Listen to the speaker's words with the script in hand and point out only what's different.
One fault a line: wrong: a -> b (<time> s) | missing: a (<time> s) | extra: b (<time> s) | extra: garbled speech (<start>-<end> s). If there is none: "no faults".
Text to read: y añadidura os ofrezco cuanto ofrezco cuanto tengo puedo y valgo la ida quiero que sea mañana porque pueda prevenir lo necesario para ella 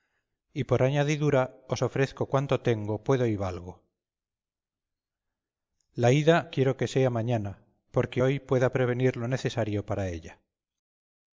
extra: por (0.6 s)
missing: ofrezco cuanto (2.6 s)
extra: hoy (8.2 s)